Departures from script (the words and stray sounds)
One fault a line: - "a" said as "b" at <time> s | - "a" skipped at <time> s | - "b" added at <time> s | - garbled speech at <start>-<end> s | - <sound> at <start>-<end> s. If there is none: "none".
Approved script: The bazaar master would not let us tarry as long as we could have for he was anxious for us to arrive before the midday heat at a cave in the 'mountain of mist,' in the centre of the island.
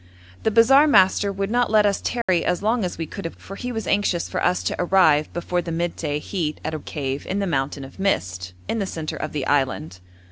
- dropout at 2.2-2.3 s